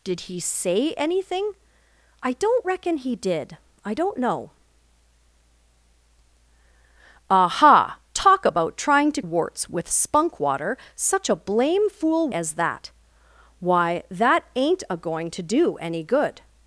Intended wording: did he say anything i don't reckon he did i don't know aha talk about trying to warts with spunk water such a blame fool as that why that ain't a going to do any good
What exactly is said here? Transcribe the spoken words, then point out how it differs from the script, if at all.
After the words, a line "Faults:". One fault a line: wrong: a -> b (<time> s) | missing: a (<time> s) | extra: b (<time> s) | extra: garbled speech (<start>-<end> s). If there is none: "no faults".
did he say anything i don't reckon he did i don't know aha talk about trying to warts with spunk water such a blame fool as that why that ain't a going to do any good
Faults:
no faults